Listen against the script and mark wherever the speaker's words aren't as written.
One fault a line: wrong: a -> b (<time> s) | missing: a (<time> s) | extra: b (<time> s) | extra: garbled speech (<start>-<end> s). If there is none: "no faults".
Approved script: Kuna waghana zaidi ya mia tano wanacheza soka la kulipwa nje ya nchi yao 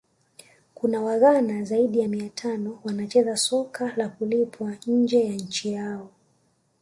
no faults